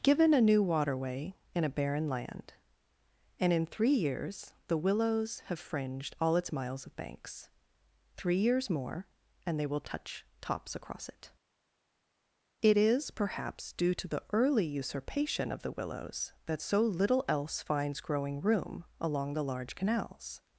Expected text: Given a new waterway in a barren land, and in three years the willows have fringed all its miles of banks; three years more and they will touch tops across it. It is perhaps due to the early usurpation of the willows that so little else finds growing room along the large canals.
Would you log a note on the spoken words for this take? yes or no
no